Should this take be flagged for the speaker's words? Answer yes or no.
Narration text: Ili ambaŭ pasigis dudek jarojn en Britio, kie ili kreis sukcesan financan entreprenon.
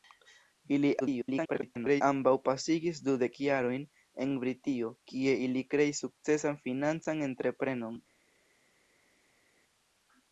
yes